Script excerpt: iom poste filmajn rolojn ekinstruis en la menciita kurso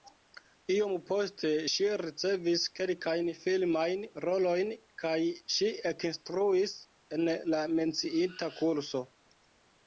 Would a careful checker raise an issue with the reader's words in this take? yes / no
yes